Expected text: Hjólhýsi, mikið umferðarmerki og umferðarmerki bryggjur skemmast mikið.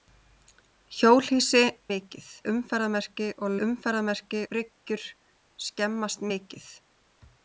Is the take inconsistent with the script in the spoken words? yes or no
no